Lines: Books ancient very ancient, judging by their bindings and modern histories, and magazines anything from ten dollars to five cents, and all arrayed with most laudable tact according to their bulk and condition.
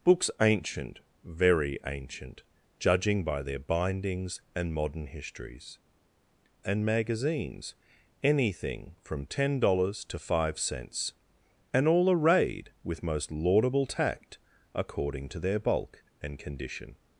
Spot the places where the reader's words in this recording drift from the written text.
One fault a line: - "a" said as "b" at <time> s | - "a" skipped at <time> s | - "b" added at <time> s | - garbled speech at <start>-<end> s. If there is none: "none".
none